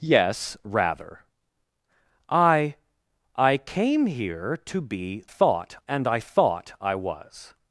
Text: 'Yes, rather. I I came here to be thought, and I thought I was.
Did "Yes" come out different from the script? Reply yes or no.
no